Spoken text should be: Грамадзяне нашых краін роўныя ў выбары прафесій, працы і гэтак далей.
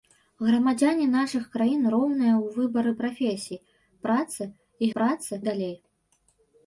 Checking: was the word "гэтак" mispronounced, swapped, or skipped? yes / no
yes